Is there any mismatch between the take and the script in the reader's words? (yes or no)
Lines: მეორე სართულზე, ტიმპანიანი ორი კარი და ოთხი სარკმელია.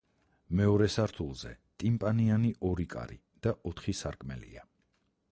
no